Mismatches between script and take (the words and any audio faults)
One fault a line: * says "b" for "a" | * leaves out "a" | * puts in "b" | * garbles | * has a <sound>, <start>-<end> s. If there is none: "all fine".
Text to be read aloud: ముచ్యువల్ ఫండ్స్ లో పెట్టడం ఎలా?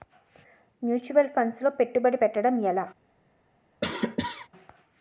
* puts in "పెట్టుబడి"
* has a cough, 3.8-4.5 s